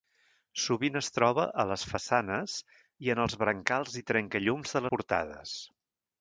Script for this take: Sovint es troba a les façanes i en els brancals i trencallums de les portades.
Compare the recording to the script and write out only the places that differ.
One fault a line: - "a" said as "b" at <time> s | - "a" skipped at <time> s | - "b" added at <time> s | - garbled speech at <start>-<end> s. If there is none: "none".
- "les" skipped at 4.8 s